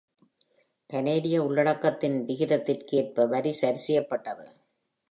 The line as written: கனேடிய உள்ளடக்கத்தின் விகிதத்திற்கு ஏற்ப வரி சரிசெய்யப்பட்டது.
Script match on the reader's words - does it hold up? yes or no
yes